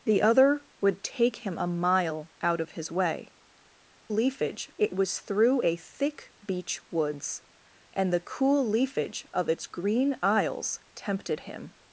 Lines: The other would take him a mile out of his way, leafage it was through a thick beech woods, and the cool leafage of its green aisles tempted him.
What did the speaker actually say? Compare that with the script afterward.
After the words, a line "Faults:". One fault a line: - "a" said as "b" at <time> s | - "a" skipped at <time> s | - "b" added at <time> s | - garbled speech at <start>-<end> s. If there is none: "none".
The other would take him a mile out of his way, leafage it was through a thick beech woods, and the cool leafage of its green aisles tempted him.
Faults:
none